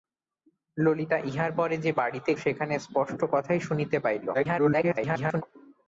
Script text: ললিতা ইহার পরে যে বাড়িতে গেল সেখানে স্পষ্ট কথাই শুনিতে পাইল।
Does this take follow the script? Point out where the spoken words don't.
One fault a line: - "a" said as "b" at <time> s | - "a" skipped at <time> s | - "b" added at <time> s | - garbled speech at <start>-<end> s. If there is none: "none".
- "গেল" skipped at 2.3 s
- garbled speech at 4.3-5.4 s